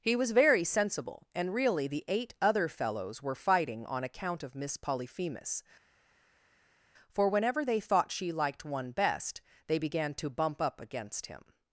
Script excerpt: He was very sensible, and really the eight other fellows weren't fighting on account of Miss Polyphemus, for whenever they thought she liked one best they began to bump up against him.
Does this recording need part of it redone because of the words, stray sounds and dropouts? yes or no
yes